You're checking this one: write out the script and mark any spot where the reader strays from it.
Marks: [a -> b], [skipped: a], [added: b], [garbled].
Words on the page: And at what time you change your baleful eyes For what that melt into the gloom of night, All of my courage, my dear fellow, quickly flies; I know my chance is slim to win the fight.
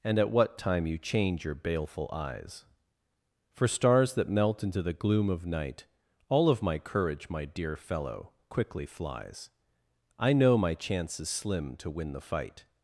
And at what time you change your baleful eyes For [what -> stars] that melt into the gloom of night, All of my courage, my dear fellow, quickly flies; I know my chance is slim to win the fight.